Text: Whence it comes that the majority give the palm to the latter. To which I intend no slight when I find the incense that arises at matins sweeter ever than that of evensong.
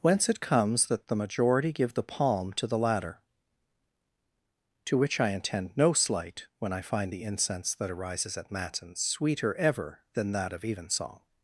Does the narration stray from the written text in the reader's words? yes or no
no